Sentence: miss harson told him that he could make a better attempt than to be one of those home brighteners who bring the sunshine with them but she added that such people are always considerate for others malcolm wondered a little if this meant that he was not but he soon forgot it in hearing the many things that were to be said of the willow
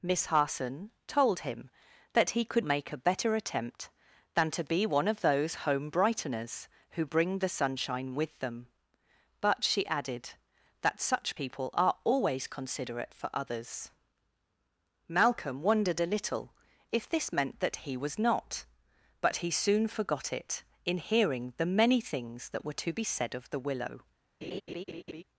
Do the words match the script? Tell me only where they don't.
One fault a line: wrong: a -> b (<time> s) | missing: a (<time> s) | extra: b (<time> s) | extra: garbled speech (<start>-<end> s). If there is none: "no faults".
no faults